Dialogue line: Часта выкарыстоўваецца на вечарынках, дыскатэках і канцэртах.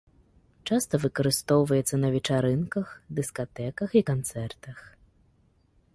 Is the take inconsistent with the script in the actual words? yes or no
no